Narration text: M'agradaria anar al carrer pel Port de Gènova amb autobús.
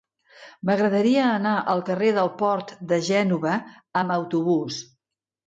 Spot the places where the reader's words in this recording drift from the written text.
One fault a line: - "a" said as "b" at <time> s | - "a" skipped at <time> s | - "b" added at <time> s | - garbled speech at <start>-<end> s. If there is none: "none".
- "pel" said as "del" at 2.2 s